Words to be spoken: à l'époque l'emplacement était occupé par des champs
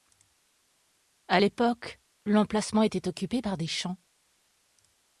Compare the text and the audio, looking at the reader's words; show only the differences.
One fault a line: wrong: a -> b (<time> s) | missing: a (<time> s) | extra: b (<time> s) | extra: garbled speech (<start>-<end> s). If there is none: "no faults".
no faults